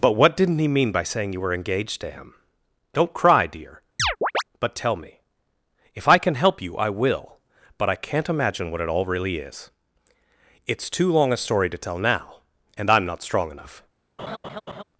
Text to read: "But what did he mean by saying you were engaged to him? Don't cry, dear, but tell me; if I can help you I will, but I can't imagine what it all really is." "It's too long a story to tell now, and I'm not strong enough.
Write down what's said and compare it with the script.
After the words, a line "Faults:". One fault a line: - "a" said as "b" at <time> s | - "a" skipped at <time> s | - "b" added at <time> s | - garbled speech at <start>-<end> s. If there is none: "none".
"But what didn't he mean by saying you were engaged to him? Don't cry, dear, but tell me; if I can help you I will, but I can't imagine what it all really is." "It's too long a story to tell now, and I'm not strong enough.
Faults:
- "did" said as "didn't" at 0.3 s